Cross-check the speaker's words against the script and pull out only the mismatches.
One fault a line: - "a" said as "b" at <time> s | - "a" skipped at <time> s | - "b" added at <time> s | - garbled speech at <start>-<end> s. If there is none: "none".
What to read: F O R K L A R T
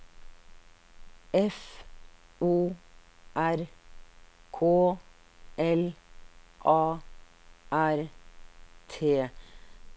none